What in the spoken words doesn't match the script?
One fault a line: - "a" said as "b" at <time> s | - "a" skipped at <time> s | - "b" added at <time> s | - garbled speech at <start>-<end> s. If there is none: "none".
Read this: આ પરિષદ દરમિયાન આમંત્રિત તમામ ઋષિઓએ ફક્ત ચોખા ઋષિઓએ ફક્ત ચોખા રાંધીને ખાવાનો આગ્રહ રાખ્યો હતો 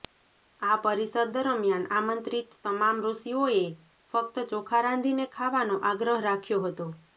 - "ઋષિઓએ ફક્ત ચોખા" skipped at 4.9 s